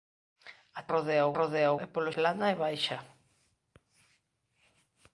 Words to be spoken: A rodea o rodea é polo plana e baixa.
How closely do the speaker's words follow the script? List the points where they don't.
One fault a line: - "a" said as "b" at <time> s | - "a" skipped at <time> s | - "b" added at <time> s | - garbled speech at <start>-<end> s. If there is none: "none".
none